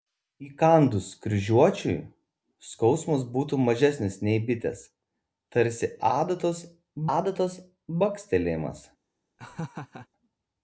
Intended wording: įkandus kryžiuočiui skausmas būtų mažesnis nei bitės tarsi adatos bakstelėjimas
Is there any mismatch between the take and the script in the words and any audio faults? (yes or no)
yes